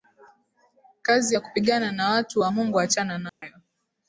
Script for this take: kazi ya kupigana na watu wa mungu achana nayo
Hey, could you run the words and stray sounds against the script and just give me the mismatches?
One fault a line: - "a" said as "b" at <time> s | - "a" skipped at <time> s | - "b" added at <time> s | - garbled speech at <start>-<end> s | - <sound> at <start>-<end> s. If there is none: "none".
- dropout at 3.3-3.4 s